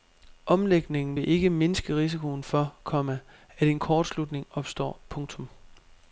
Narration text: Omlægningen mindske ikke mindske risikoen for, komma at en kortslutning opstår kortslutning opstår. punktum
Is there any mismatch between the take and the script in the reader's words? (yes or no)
yes